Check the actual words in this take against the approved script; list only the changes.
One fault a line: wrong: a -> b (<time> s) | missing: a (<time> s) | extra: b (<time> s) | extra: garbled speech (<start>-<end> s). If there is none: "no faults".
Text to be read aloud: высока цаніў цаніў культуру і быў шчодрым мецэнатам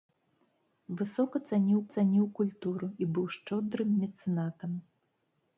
no faults